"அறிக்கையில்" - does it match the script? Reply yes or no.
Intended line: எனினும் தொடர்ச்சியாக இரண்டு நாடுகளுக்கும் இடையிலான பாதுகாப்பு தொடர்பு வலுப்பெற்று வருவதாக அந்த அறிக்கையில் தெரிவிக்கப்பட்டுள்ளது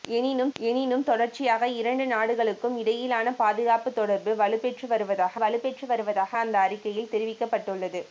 yes